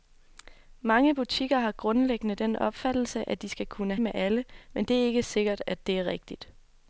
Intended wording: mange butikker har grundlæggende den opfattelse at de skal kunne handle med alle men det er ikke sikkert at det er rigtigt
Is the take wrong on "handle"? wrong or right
wrong